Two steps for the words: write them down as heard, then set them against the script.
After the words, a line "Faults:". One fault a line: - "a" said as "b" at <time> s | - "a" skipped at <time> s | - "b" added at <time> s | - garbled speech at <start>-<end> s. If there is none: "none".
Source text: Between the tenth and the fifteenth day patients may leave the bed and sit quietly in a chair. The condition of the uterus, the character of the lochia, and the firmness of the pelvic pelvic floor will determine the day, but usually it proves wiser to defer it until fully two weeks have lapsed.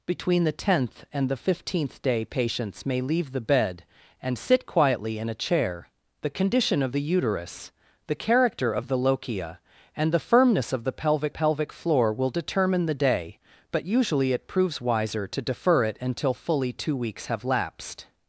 Between the tenth and the fifteenth day patients may leave the bed and sit quietly in a chair. The condition of the uterus, the character of the lochia, and the firmness of the pelvic pelvic floor will determine the day, but usually it proves wiser to defer it until fully two weeks have lapsed.
Faults:
none